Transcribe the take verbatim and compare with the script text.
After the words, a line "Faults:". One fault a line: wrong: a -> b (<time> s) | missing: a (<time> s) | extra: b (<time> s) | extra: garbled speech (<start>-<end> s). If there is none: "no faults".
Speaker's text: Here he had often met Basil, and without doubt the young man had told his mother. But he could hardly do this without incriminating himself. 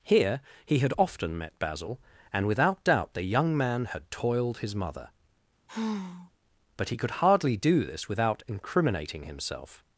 Here he had often met Basil, and without doubt the young man had toiled his mother. But he could hardly do this without incriminating himself.
Faults:
wrong: told -> toiled (4.1 s)